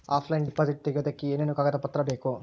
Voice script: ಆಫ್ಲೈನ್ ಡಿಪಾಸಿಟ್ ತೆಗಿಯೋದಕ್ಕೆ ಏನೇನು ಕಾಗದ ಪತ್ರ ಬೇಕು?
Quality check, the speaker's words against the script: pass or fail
pass